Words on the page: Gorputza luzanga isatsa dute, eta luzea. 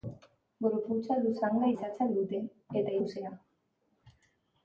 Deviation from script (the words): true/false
false